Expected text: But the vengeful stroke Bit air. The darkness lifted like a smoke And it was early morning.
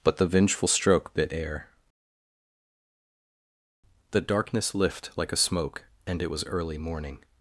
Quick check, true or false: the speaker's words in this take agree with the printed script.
false